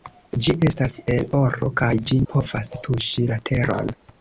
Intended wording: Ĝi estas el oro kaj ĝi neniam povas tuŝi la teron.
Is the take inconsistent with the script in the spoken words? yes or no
yes